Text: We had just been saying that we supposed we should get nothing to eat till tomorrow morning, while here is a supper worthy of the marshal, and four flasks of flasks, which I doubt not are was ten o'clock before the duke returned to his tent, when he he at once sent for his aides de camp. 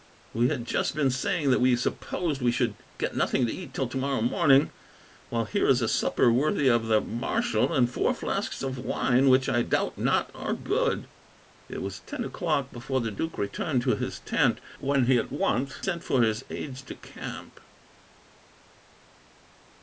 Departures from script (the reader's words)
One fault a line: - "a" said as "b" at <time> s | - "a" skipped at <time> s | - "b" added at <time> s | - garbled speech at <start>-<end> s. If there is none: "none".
- "flasks" said as "wine" at 8.8 s
- "good It" added at 10.5 s
- "he" skipped at 15.2 s